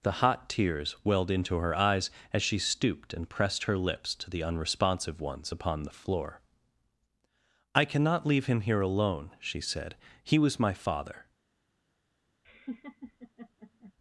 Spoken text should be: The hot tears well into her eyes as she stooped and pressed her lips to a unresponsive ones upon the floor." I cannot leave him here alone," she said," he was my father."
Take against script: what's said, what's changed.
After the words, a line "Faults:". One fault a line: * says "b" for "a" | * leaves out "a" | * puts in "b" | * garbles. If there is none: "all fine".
The hot tears welled into her eyes as she stooped and pressed her lips to the unresponsive ones upon the floor." I cannot leave him here alone," she said," he was my father."
Faults:
* says "welled" for "well"
* says "the" for "a"